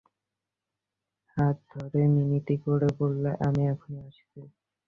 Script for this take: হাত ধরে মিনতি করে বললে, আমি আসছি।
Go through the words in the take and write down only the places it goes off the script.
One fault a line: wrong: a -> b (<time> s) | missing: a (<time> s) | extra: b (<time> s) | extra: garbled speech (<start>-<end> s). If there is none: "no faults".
extra: এখনই (3.7 s)